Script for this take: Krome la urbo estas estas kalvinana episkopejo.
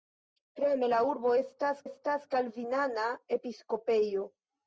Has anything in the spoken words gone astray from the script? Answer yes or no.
no